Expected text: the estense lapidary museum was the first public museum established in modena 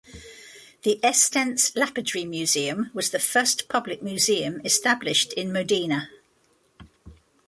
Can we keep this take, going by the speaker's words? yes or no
yes